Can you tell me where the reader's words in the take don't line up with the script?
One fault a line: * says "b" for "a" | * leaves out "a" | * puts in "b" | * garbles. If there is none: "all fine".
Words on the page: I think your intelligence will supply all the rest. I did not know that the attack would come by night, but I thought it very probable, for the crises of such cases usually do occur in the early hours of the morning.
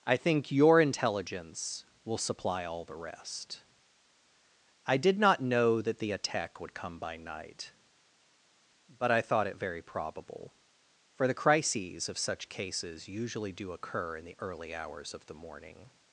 all fine